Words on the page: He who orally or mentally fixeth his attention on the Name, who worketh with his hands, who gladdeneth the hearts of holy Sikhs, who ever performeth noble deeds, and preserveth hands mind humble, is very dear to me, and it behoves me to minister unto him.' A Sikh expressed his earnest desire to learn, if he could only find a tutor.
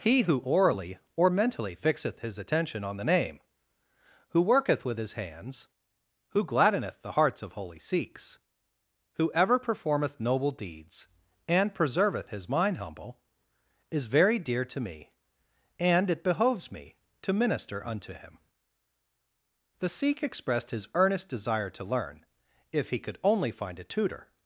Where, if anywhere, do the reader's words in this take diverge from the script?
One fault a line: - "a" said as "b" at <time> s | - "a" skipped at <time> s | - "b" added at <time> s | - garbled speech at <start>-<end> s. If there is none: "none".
- "hands" said as "his" at 12.3 s
- "A" said as "The" at 19.8 s